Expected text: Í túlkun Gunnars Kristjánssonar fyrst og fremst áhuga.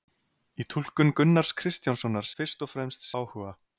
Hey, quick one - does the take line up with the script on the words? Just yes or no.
yes